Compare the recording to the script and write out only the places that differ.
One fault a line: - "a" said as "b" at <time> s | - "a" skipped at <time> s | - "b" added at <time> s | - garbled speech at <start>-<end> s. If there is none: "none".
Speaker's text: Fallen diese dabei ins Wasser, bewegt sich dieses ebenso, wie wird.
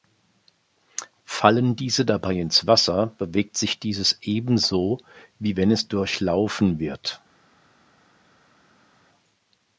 - "wenn es durchlaufen" added at 5.6 s